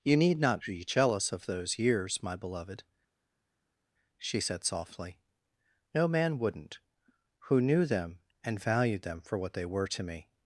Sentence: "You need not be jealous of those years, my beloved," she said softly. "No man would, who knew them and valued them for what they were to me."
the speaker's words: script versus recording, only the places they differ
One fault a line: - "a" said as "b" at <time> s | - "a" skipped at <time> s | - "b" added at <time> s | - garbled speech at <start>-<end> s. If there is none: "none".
- "would" said as "wouldn't" at 6.4 s